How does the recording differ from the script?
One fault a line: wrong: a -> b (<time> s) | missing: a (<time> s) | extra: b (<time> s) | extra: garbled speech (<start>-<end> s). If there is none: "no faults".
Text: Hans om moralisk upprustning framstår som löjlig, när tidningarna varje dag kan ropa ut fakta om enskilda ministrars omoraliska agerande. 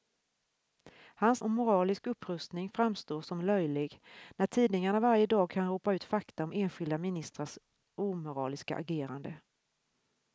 no faults